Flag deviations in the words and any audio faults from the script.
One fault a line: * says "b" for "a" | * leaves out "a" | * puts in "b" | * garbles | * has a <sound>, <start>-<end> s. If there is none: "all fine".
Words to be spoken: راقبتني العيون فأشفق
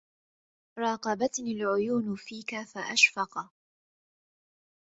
* puts in "فيك"